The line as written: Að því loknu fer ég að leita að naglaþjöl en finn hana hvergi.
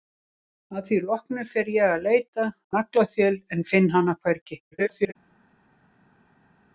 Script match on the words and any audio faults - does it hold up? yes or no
no